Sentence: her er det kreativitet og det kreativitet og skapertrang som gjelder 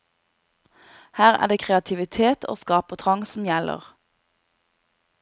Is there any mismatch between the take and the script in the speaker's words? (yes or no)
yes